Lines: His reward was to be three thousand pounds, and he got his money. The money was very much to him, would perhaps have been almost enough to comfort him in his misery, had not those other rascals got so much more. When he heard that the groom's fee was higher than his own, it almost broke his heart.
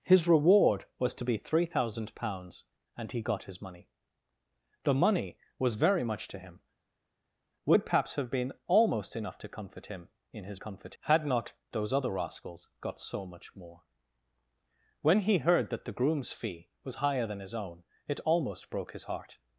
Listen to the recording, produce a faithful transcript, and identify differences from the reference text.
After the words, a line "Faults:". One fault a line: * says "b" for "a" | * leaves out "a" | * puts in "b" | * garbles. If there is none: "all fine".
His reward was to be three thousand pounds, and he got his money. The money was very much to him, would perhaps have been almost enough to comfort him in his comfort, had not those other rascals got so much more. When he heard that the groom's fee was higher than his own, it almost broke his heart.
Faults:
* says "comfort" for "misery"